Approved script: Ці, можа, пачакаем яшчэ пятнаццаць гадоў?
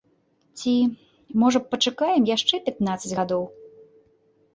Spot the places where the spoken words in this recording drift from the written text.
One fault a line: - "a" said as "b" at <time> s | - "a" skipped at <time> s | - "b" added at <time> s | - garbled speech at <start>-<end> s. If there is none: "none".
none